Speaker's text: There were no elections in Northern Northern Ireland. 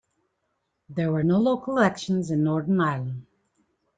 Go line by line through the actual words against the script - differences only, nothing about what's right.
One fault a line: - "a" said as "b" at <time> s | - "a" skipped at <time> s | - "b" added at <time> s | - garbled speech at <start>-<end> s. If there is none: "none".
- "local" added at 1.4 s
- "Northern" skipped at 2.8 s